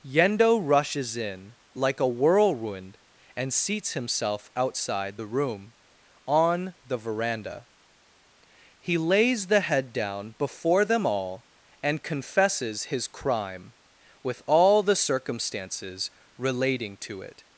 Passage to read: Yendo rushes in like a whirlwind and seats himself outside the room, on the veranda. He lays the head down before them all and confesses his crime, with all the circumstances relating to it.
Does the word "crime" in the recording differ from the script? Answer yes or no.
no